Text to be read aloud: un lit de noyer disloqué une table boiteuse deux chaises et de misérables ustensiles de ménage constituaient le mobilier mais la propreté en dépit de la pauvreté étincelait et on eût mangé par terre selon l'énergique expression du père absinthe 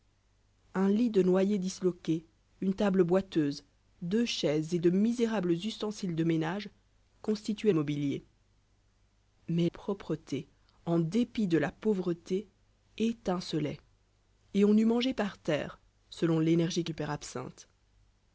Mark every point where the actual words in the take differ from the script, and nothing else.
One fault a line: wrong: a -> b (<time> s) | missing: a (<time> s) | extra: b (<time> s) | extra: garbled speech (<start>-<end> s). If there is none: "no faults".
missing: le (7.7 s)
missing: la (9.7 s)
missing: expression (16.9 s)